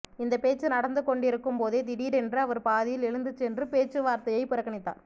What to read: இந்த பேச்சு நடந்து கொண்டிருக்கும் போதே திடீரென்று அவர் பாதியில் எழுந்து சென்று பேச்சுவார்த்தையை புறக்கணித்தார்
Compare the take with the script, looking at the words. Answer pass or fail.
pass